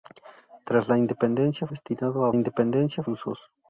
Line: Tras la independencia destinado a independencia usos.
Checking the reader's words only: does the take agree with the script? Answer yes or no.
yes